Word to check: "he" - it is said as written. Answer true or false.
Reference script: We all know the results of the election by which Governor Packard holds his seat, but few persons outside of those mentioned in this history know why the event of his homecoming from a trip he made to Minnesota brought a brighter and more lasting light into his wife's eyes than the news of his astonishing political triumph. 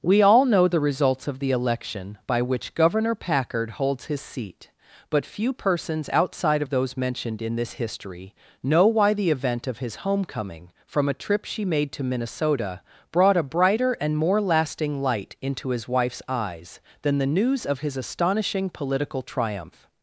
false